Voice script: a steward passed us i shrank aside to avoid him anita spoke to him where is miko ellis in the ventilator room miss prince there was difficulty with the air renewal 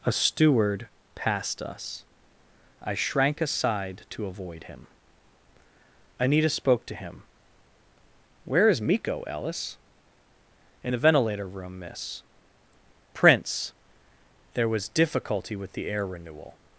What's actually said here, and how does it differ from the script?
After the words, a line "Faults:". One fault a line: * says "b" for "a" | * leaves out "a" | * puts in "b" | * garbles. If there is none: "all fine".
a steward passed us i shrank aside to avoid him anita spoke to him where is miko ellis in the ventilator room miss prince there was difficulty with the air renewal
Faults:
all fine